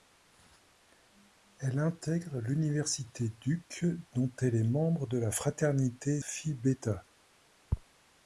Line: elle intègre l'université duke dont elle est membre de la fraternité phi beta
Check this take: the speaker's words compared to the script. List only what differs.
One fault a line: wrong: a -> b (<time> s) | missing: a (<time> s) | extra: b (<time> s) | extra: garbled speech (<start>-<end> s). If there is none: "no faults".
no faults